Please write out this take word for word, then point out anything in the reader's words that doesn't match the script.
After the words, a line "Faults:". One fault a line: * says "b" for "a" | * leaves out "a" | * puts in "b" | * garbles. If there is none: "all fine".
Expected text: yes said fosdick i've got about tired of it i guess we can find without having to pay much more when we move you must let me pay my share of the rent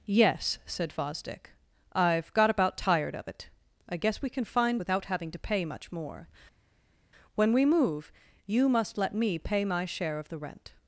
yes said fosdick i've got about tired of it i guess we can find without having to pay much more when we move you must let me pay my share of the rent
Faults:
all fine